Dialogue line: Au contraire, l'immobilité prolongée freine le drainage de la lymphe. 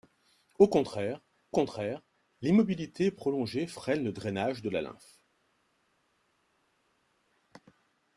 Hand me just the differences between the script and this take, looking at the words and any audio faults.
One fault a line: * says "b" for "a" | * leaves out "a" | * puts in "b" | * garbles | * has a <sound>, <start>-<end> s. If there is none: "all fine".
* puts in "contraire"